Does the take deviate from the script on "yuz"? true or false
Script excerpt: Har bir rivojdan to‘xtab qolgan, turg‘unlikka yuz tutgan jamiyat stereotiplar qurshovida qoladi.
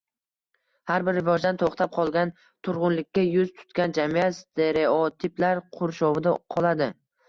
false